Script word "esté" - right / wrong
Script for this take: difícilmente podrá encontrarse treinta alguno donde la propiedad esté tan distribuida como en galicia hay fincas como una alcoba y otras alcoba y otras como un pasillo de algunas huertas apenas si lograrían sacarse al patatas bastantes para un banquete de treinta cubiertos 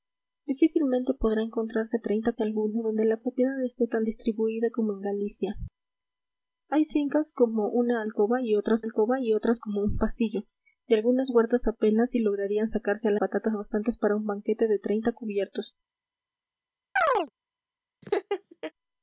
right